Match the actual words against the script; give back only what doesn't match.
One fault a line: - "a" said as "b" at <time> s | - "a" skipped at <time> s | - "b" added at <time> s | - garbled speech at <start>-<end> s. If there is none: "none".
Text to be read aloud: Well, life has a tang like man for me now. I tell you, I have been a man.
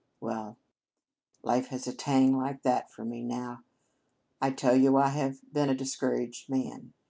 - "man" said as "that" at 2.6 s
- "discouraged" added at 5.7 s